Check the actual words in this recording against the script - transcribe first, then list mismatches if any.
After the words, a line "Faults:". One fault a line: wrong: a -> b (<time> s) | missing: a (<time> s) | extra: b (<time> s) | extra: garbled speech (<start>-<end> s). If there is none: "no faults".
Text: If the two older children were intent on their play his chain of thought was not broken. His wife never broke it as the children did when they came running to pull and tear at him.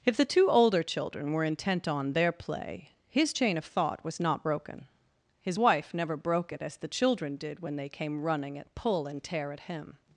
If the two older children were intent on their play his chain of thought was not broken. His wife never broke it as the children did when they came running at pull and tear at him.
Faults:
wrong: to -> at (8.6 s)